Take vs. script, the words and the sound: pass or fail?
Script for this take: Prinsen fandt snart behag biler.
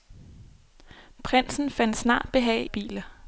pass